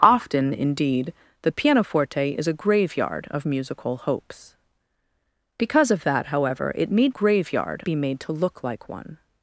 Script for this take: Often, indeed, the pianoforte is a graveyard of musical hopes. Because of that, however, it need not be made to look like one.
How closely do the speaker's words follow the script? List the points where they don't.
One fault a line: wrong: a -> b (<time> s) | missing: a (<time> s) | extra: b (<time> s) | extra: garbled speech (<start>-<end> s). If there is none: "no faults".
wrong: not -> graveyard (7.1 s)